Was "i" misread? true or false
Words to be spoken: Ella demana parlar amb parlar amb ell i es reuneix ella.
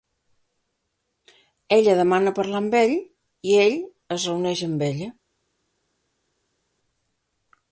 true